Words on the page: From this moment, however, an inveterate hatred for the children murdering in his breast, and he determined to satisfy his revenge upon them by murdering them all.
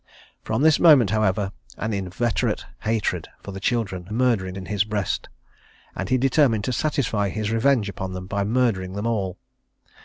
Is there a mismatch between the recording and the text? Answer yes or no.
no